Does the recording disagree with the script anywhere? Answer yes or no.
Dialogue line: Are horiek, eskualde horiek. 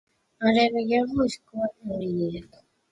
yes